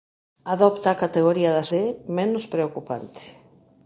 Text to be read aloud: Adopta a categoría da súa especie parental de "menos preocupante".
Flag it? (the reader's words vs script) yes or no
yes